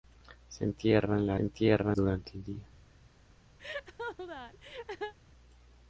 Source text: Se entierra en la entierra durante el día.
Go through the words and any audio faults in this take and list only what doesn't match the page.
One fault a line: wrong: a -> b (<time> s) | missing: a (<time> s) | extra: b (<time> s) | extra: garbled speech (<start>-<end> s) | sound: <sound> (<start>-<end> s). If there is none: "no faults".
sound: laugh (3.6-5.1 s)